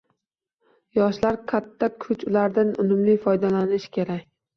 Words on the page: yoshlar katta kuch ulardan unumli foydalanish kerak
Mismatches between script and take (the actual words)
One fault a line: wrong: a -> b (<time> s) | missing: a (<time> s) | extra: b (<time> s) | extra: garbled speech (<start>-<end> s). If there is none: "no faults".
no faults